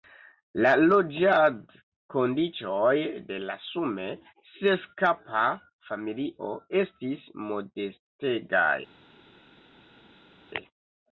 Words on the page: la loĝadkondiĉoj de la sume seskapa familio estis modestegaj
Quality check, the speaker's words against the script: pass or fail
pass